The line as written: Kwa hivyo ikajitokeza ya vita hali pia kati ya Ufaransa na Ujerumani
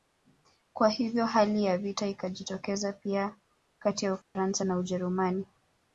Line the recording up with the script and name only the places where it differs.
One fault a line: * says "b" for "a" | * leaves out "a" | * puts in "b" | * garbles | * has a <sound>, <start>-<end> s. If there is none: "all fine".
* says "hali" for "ikajitokeza"
* says "ikajitokeza" for "hali"
* has a dropout, 4.2-4.4 s